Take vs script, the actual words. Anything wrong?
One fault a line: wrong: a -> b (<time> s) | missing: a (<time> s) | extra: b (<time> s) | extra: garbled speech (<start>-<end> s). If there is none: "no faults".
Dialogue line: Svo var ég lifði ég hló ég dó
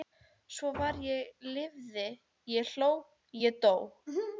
no faults